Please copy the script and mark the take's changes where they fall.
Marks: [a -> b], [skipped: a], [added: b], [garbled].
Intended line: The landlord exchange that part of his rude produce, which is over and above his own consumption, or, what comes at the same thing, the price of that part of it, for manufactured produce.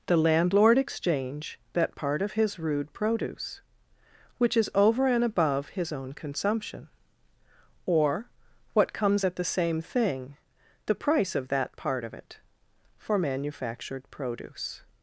The landlord exchange that part of his rude produce, which is over and above his own consumption, or, what comes at the same thing, the price of that part of it, for manufactured produce.